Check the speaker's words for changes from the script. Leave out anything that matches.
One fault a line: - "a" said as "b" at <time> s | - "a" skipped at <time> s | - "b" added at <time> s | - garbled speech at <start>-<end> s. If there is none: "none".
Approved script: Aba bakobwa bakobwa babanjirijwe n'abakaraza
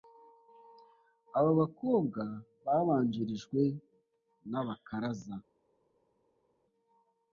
- "bakobwa" skipped at 2.2 s